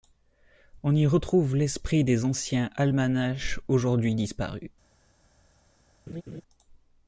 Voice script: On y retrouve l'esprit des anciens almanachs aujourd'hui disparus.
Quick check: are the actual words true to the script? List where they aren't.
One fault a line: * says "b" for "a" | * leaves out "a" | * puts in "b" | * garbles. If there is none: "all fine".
all fine